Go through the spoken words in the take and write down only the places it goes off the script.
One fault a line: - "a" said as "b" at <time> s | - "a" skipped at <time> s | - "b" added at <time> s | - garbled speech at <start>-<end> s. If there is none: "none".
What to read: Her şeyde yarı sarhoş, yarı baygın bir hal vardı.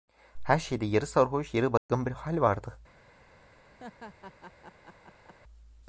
none